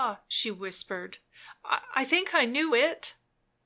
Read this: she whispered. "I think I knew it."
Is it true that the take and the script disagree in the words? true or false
false